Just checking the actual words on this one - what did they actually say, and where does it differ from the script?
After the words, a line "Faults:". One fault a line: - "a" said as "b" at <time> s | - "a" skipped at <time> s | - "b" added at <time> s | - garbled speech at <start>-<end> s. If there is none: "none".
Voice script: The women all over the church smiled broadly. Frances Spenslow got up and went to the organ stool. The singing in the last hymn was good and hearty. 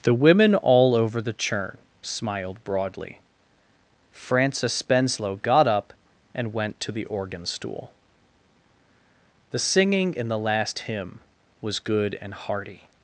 The women all over the churn smiled broadly. Frances Spenslow got up and went to the organ stool. The singing in the last hymn was good and hearty.
Faults:
- "church" said as "churn" at 1.3 s